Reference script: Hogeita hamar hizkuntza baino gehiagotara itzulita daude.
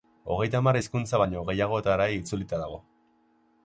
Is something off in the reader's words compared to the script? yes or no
yes